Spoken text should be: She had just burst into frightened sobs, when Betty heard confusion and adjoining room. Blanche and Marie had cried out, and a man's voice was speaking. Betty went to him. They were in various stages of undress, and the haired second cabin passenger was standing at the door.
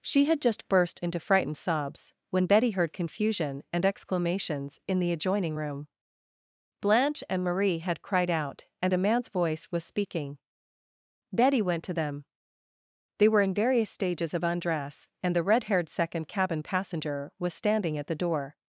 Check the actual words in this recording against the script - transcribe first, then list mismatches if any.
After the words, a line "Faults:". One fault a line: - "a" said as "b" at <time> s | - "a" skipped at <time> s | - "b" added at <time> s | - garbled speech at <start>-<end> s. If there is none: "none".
She had just burst into frightened sobs, when Betty heard confusion and exclamations in the adjoining room. Blanche and Marie had cried out, and a man's voice was speaking. Betty went to them. They were in various stages of undress, and the red haired second cabin passenger was standing at the door.
Faults:
- "exclamations in the" added at 3.9 s
- "him" said as "them" at 11.9 s
- "red" added at 15.4 s